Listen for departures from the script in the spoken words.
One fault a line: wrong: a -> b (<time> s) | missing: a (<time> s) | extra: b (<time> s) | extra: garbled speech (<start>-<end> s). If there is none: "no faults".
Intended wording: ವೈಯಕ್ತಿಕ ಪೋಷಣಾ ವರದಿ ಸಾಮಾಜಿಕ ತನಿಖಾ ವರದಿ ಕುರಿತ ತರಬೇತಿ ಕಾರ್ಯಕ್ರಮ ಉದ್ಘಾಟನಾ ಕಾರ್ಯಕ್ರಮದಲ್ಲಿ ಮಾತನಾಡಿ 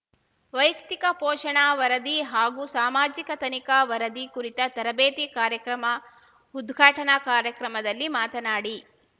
extra: ಹಾಗೂ (2.3 s)